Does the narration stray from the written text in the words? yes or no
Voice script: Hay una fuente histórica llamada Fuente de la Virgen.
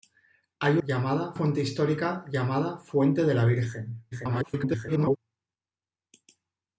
yes